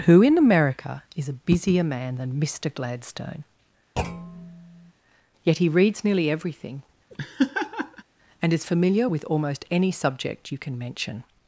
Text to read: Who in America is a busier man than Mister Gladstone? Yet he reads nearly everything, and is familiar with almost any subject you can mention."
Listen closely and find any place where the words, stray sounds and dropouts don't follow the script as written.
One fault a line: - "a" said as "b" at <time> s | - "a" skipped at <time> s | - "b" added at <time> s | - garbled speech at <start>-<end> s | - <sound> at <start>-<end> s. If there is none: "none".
- thud at 4.0-4.9 s
- laugh at 7.1-8.0 s